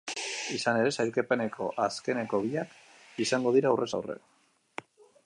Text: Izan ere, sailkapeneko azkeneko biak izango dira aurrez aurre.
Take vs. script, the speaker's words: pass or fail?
pass